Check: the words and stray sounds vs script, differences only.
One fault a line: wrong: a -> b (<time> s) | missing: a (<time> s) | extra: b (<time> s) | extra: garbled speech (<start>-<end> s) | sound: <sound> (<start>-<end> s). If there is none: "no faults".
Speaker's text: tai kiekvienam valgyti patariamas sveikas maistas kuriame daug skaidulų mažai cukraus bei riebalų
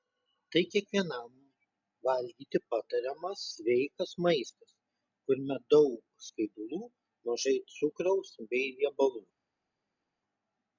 no faults